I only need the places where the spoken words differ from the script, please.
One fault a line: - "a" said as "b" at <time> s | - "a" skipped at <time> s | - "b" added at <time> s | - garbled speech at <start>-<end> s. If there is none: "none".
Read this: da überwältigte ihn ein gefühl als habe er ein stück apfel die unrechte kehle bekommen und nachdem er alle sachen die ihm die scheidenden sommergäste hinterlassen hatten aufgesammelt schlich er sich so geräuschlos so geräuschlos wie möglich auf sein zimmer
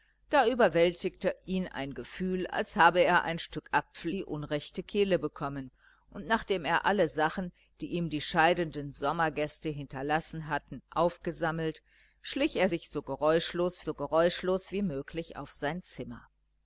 none